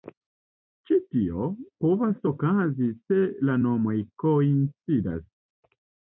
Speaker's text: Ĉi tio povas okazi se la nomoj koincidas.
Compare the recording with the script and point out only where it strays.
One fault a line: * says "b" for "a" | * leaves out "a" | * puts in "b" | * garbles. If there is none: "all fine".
all fine